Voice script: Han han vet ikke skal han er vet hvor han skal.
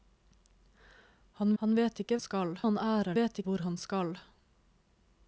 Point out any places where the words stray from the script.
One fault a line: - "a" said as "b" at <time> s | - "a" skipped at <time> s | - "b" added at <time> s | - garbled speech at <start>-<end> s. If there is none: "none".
none